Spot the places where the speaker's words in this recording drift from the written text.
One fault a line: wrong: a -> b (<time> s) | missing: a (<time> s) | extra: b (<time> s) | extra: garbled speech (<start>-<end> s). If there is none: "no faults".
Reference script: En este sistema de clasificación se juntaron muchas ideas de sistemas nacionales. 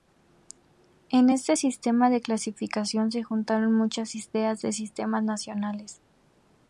no faults